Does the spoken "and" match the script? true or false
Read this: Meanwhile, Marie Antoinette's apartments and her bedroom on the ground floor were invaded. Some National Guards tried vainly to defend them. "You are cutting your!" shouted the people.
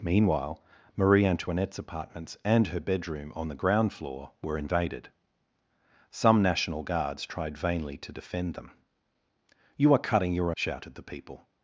true